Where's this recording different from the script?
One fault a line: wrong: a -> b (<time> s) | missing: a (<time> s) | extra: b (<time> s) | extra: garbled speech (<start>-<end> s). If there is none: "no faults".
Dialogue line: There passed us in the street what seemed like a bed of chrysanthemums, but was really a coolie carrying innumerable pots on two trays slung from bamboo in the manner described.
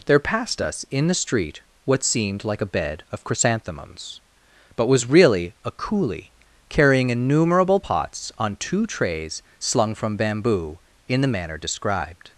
no faults